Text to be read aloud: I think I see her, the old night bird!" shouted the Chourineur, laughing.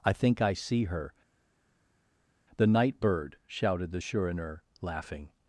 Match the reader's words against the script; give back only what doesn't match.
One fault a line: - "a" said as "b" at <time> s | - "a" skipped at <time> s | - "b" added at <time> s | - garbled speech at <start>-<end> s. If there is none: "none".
- "old" skipped at 2.7 s